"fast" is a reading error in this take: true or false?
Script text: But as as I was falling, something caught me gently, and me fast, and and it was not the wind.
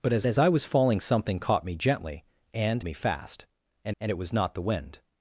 false